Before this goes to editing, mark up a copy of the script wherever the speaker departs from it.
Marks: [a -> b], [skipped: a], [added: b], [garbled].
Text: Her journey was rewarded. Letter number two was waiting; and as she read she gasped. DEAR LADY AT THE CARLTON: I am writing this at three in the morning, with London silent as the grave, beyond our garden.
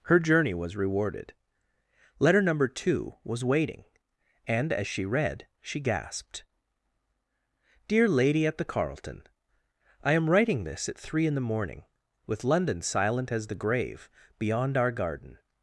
Her journey was rewarded. Letter number two was waiting; and as she read she gasped. DEAR LADY AT THE CARLTON: I am writing this at three in the morning, with London silent as the grave, beyond our garden.